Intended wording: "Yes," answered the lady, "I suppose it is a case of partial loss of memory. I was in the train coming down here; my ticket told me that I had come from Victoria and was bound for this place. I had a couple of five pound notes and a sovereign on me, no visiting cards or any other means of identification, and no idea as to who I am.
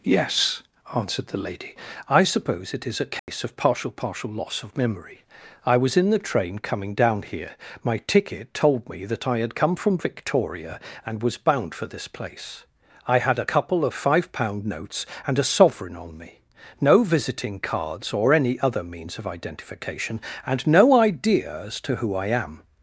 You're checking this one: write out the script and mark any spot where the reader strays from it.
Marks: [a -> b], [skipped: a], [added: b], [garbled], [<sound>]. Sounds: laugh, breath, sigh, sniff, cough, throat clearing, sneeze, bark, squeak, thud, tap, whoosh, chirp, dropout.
"Yes," answered the lady, "I suppose it is a case [dropout] of partial [added: partial] loss of memory. I was in the train coming down here; my ticket told me that I had come from Victoria and was bound for this place. I had a couple of five pound notes and a sovereign on me, no visiting cards or any other means of identification, and no idea as to who I am.